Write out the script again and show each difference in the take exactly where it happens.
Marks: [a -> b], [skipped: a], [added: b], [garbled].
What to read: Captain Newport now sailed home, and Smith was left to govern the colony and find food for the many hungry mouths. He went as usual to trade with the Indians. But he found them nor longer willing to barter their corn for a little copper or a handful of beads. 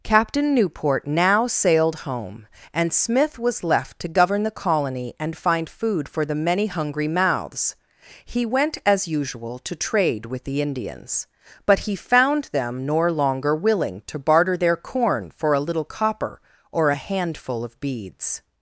Captain Newport now sailed home, and Smith was left to govern the colony and find food for the many hungry mouths. He went as usual to trade with the Indians. But he found them nor longer willing to barter their corn for a little copper or a handful of beads.